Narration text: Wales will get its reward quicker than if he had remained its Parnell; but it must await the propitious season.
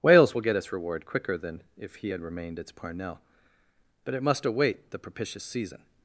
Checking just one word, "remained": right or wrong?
right